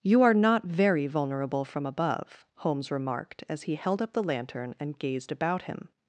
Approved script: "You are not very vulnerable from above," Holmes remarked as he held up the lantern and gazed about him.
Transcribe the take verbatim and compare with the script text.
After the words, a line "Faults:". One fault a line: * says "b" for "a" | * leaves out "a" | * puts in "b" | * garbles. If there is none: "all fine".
"You are not very vulnerable from above," Holmes remarked as he held up the lantern and gazed about him.
Faults:
all fine